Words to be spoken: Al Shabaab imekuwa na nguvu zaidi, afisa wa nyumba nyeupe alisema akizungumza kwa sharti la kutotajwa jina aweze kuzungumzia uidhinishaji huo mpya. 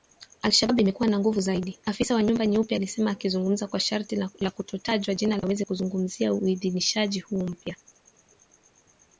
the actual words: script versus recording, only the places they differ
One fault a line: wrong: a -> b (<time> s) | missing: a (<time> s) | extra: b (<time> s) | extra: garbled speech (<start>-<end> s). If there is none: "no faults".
no faults